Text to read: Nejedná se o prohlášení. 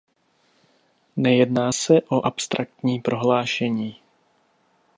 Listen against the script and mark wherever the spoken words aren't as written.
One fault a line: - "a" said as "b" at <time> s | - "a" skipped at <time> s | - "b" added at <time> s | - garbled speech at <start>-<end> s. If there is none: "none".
- "abstraktní" added at 2.2 s